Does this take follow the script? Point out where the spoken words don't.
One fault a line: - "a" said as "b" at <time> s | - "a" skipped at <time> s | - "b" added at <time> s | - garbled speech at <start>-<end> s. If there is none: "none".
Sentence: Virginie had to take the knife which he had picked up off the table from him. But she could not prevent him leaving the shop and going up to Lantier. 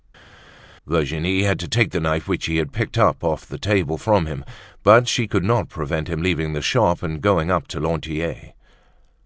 none